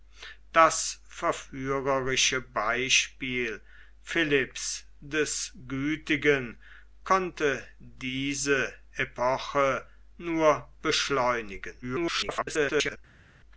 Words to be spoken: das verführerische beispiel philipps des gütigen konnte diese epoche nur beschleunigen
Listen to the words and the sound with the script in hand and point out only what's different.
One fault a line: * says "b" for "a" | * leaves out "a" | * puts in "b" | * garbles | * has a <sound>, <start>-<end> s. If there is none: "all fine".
* garbles